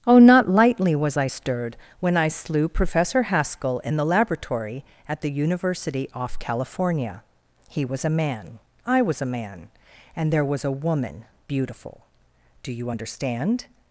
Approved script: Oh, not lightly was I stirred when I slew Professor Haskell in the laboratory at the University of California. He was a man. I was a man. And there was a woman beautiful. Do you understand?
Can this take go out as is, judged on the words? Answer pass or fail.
fail